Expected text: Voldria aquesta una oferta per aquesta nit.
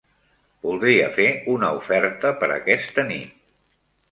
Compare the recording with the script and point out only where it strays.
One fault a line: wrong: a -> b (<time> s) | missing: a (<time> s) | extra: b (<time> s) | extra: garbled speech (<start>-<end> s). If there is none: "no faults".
wrong: aquesta -> fer (1.1 s)